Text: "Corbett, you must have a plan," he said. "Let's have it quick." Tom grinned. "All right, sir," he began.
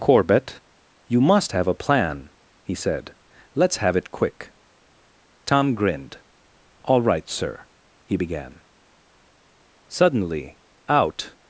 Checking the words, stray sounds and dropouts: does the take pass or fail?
fail